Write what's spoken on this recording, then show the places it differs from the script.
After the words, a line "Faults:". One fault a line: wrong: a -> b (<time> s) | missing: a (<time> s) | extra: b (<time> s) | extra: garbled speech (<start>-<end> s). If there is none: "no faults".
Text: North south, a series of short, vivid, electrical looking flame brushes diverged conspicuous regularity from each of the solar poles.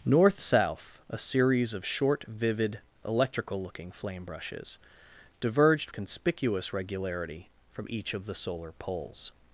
North south, a series of short, vivid, electrical looking flame brushes diverged conspicuous regularity from each of the solar poles.
Faults:
no faults